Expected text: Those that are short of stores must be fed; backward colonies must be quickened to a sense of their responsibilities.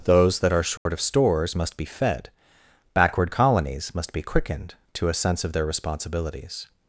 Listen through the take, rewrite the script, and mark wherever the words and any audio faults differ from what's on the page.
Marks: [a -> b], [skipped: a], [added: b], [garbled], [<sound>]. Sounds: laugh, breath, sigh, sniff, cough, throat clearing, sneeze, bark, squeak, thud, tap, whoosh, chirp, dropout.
Those that are short [dropout] of stores must be fed; backward colonies must be quickened to a sense of their responsibilities.